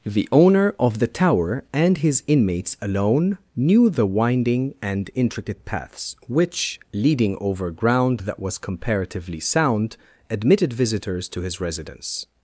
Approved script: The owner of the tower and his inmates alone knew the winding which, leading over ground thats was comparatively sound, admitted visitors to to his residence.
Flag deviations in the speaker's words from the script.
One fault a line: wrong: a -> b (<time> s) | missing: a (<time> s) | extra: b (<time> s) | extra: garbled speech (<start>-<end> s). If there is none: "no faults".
extra: and intricate paths (4.8 s)
wrong: thats -> that (8.2 s)
missing: to (11.4 s)